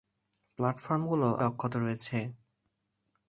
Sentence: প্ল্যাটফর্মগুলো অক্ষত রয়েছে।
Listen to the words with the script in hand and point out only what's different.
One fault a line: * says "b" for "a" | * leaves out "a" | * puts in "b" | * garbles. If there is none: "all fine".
all fine